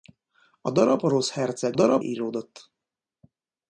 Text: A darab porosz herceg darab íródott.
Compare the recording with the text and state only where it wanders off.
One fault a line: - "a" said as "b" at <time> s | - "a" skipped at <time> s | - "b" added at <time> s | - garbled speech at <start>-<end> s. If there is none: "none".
none